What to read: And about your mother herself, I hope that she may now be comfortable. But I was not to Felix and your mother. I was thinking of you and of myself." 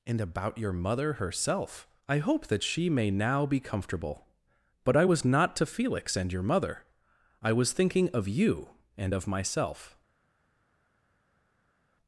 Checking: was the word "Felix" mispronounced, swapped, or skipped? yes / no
no